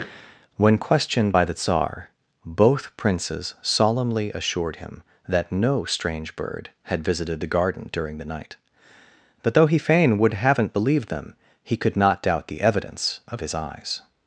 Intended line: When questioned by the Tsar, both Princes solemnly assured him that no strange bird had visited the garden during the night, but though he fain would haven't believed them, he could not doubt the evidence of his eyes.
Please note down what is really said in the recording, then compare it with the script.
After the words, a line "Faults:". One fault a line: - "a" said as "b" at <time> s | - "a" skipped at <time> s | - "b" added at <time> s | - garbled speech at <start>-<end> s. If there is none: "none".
When questioned by the Tsar, both Princes solemnly assured him that no strange bird had visited the garden during the night, but though he fain would haven't believed them, he could not doubt the evidence of his eyes.
Faults:
none